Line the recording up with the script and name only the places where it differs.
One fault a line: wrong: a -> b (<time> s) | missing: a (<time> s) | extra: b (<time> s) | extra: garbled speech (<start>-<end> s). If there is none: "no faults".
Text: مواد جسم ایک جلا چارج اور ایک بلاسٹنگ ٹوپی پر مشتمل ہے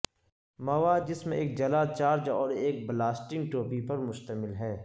no faults